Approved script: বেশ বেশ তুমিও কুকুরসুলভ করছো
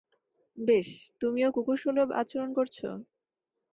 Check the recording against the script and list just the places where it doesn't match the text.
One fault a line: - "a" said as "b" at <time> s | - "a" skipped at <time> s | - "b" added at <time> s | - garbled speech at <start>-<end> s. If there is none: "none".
- "বেশ" skipped at 0.9 s
- "আচরণ" added at 2.2 s